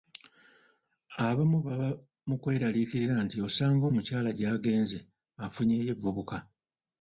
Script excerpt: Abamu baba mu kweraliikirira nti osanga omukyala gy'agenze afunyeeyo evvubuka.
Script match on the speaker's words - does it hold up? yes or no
yes